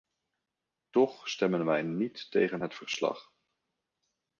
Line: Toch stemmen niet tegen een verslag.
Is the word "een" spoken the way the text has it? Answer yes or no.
no